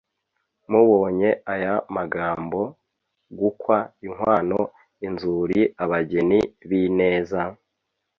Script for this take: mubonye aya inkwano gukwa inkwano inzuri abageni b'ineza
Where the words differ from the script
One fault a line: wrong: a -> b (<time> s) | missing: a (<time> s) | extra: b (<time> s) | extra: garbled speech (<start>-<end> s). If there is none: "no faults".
wrong: inkwano -> magambo (1.9 s)